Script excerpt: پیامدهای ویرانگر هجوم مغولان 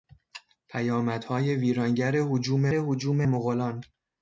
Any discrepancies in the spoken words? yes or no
yes